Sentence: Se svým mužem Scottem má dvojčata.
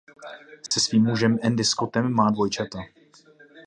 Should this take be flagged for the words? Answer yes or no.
yes